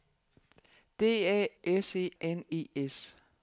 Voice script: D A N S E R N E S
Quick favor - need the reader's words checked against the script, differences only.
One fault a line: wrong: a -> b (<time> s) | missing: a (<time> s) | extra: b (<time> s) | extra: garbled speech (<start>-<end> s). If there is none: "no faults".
missing: N (1.5 s)
missing: R (2.1 s)